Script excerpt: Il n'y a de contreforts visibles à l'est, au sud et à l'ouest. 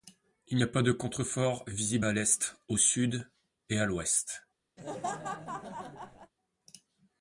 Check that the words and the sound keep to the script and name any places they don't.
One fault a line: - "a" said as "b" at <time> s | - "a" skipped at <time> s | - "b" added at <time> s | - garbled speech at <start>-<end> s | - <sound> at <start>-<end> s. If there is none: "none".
- "pas" added at 0.7 s
- laugh at 4.8-6.3 s